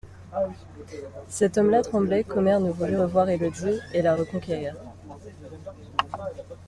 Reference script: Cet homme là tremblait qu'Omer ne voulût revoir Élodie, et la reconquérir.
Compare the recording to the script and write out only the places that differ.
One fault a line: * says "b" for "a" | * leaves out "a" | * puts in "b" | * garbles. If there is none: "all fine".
all fine